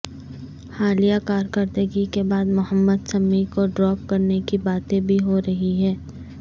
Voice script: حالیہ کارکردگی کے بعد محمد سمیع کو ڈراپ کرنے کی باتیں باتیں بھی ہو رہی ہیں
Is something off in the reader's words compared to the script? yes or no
yes